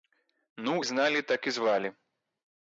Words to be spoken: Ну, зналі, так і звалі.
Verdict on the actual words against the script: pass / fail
pass